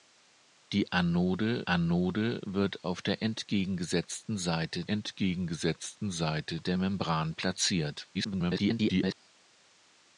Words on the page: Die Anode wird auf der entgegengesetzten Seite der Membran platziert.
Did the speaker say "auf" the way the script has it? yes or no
yes